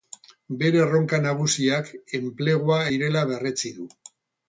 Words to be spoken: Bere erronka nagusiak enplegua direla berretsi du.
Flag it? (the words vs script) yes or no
no